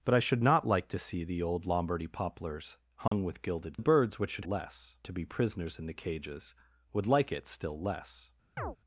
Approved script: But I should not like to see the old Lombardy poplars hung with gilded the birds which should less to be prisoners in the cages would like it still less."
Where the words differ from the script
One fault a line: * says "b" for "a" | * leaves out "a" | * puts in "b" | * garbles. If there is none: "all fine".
all fine